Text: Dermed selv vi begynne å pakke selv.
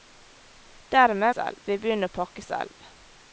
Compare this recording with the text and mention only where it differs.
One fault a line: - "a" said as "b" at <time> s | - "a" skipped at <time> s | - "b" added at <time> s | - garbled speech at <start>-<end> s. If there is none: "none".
none